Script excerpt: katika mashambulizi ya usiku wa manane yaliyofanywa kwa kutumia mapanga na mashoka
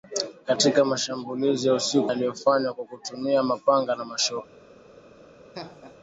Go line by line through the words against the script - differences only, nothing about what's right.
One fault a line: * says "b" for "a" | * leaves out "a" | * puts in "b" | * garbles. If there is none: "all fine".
* leaves out "wa manane"